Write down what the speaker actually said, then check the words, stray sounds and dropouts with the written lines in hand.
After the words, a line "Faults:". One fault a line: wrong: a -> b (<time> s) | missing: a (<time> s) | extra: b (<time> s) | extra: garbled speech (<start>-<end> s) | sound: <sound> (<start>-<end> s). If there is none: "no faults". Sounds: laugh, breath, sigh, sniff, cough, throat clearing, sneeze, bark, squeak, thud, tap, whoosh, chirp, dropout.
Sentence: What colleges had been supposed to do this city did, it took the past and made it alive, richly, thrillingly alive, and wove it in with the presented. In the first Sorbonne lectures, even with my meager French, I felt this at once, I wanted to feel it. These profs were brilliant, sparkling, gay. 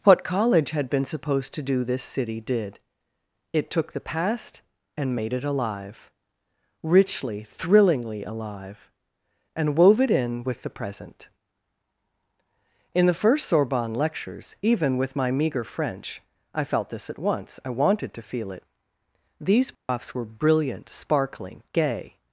What college had been supposed to do this city did, it took the past and made it alive, richly, thrillingly alive, and wove it in with the present. In the first Sorbonne lectures, even with my meager French, I felt this at once, I wanted to feel it. These profs were brilliant, sparkling, gay.
Faults:
wrong: colleges -> college (0.2 s)
wrong: presented -> present (10.7 s)
sound: dropout (19.7-19.9 s)